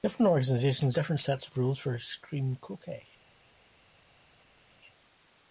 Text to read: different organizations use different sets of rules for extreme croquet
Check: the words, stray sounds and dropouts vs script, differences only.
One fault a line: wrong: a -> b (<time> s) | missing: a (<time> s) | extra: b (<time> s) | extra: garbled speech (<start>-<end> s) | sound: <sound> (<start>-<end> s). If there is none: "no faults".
missing: use (1.0 s)